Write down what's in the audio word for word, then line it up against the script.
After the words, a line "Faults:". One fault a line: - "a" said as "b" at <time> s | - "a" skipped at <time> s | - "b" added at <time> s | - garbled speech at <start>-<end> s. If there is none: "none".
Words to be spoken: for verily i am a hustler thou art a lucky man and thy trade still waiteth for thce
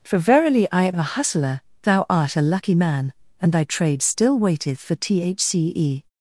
for verily i am a hustler thou art a lucky man and thy trade still waiteth for thce
Faults:
none